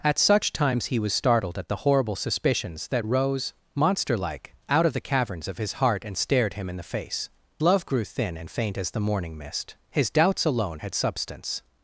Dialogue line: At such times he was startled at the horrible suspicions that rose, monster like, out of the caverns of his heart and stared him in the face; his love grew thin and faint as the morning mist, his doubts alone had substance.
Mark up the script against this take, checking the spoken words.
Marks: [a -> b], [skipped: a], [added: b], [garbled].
At such times he was startled at the horrible suspicions that rose, monster like, out of the caverns of his heart and stared him in the face; [skipped: his] love grew thin and faint as the morning mist, his doubts alone had substance.